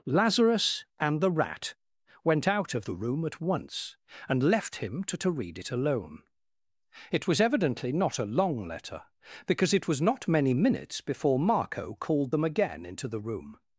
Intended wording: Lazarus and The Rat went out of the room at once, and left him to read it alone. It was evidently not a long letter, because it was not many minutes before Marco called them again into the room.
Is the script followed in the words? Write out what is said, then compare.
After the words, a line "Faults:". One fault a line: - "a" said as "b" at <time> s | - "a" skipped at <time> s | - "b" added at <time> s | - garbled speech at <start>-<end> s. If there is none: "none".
Lazarus and The Rat went out of the room at once, and left him to to read it alone. It was evidently not a long letter, because it was not many minutes before Marco called them again into the room.
Faults:
- "to" added at 5.2 s